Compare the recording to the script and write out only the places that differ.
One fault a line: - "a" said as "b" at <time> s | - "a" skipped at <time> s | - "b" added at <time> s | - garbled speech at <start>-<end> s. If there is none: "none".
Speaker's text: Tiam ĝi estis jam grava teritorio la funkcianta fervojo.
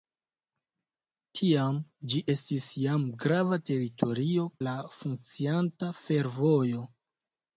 none